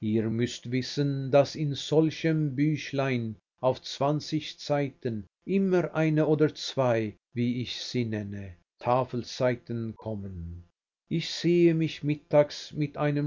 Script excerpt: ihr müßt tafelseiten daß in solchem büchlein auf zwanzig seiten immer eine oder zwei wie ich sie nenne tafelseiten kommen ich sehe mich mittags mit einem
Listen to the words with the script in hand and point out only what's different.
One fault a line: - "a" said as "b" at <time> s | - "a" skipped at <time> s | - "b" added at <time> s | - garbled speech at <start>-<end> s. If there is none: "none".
- "tafelseiten" said as "wissen" at 0.7 s